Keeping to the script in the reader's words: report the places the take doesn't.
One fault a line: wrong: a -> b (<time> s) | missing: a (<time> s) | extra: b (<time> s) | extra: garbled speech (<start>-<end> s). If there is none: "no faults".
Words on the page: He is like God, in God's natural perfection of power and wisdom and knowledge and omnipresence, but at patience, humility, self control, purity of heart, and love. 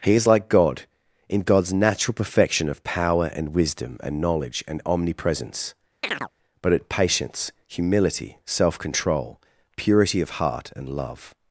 no faults